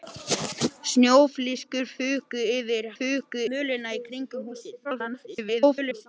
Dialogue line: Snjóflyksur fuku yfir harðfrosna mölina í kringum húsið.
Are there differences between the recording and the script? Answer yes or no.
yes